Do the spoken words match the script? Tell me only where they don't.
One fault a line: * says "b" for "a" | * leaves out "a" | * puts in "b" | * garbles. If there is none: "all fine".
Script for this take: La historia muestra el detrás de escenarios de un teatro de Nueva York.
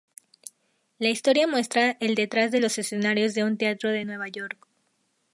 * puts in "los"